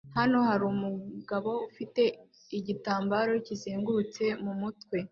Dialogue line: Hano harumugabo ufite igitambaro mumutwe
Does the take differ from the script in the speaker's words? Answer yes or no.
yes